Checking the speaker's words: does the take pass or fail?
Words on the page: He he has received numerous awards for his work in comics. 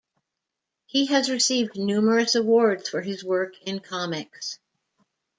fail